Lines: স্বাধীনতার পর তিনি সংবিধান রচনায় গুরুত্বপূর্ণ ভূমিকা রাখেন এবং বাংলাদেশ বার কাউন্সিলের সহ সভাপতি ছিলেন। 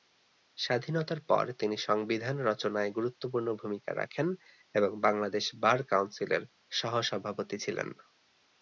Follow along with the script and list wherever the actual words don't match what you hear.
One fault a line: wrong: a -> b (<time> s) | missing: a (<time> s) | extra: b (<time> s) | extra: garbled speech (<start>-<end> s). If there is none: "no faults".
no faults